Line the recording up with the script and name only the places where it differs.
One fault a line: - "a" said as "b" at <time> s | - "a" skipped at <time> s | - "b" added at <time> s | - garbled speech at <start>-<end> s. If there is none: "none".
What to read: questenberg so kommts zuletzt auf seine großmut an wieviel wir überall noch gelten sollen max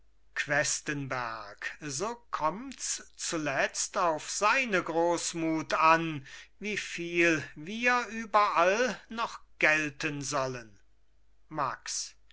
none